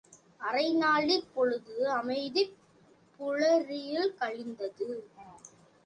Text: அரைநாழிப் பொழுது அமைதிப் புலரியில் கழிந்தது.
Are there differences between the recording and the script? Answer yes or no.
no